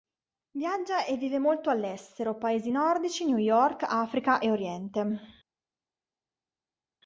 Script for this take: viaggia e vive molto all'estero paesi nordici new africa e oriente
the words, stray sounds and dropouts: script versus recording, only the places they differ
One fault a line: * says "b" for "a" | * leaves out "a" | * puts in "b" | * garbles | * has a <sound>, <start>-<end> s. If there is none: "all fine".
* puts in "york"